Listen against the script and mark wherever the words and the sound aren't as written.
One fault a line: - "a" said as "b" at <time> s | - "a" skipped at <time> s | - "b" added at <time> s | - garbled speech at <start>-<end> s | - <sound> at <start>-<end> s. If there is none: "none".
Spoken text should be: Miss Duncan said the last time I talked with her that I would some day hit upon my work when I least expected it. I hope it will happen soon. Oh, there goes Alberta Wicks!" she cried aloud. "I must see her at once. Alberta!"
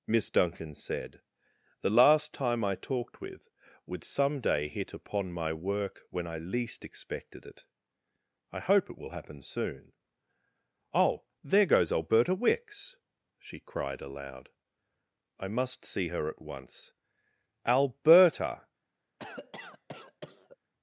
- "her that I" skipped at 3.5 s
- cough at 19.2-20.6 s